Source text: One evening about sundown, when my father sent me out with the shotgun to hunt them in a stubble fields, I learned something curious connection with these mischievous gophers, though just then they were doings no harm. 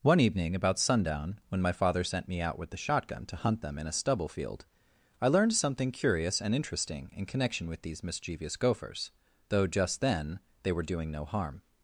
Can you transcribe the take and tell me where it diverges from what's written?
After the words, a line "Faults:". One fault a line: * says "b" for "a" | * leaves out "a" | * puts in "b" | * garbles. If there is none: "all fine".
One evening about sundown, when my father sent me out with the shotgun to hunt them in a stubble field, I learned something curious and interesting in connection with these mischievous gophers, though just then they were doing no harm.
Faults:
* says "field" for "fields"
* puts in "and interesting in"
* says "doing" for "doings"